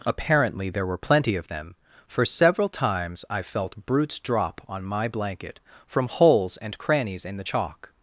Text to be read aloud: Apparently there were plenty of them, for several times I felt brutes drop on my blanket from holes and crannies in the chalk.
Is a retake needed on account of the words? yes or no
no